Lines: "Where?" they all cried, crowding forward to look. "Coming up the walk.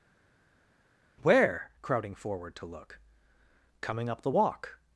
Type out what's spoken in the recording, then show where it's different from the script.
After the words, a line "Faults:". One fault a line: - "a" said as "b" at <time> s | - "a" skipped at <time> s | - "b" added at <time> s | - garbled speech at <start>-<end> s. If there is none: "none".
"Where?" crowding forward to look. "Coming up the walk.
Faults:
- "they all cried" skipped at 1.7 s